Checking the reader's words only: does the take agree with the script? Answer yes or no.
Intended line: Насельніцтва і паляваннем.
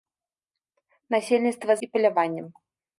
yes